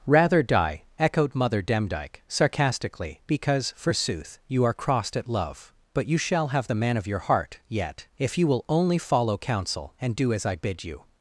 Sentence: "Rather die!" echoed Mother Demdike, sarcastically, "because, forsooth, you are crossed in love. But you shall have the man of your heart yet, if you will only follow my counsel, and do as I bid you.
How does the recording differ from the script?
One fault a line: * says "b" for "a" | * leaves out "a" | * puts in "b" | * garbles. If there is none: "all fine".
* says "at" for "in"
* leaves out "my"